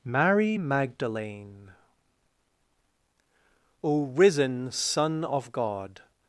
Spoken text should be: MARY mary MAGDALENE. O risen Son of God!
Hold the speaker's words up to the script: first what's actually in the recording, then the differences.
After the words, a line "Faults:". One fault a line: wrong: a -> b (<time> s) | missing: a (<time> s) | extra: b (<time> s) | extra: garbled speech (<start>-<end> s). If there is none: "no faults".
MARY MAGDALENE. O risen Son of God!
Faults:
missing: mary (0.6 s)